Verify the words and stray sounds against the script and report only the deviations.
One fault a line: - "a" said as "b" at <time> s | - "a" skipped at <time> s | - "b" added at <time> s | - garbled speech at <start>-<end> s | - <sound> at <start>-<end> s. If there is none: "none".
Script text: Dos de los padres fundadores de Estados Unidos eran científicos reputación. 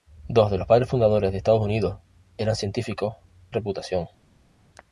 none